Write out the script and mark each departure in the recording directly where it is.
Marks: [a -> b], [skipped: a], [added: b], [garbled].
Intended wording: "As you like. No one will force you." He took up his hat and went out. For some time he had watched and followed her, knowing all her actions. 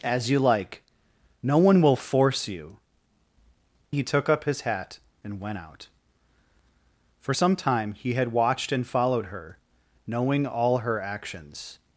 "As you like. No one will force you." He took up his hat and went out. For some time he had watched and followed her, knowing all her actions.